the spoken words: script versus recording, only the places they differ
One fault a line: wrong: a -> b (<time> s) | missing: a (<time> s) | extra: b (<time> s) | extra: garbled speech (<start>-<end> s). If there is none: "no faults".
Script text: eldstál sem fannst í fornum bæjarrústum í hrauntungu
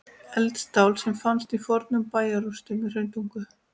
no faults